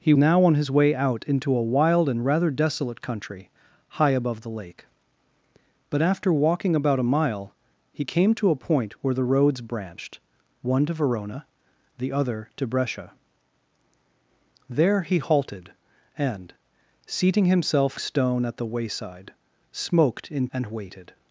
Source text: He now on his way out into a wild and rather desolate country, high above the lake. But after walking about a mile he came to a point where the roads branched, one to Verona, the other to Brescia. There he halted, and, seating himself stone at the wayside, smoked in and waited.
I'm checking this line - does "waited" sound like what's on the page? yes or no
yes